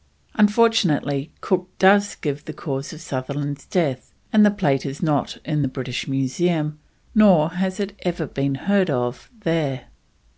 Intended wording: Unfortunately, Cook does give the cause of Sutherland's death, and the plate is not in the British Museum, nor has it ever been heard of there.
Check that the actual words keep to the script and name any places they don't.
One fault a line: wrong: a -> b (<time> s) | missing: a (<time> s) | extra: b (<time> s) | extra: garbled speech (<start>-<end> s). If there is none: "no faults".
no faults